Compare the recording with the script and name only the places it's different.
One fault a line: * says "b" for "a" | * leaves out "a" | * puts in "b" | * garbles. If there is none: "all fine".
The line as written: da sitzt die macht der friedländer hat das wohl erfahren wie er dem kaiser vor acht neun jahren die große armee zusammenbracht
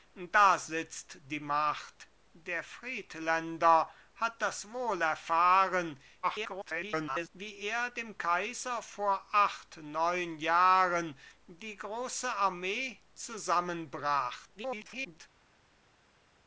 * garbles
* garbles